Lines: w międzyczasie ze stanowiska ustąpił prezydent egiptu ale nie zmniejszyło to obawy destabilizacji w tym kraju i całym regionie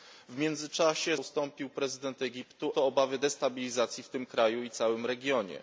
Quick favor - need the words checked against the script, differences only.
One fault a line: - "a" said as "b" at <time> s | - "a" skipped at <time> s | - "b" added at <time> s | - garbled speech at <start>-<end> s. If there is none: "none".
- "ze stanowiska" skipped at 1.2 s
- "ale nie zmniejszyło" skipped at 2.7 s